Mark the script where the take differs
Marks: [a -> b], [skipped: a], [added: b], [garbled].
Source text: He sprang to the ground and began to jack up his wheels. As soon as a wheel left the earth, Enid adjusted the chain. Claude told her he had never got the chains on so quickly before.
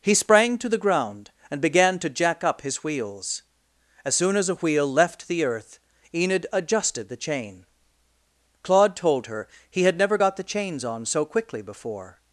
He sprang to the ground and began to jack up his wheels. As soon as a wheel left the earth, Enid adjusted the chain. Claude told her he had never got the chains on so quickly before.